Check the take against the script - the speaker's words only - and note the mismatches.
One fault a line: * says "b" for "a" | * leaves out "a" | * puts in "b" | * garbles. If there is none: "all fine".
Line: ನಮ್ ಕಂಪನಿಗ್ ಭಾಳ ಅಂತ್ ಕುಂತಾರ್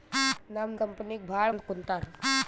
all fine